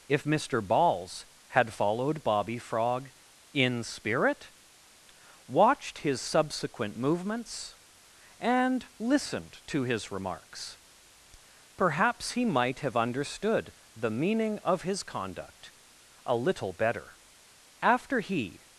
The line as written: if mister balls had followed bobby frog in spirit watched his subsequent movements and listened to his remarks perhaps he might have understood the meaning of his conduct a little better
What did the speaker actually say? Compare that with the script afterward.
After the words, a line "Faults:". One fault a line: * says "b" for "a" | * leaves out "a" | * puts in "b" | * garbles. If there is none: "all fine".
if mister balls had followed bobby frog in spirit watched his subsequent movements and listened to his remarks perhaps he might have understood the meaning of his conduct a little better after he
Faults:
* puts in "after he"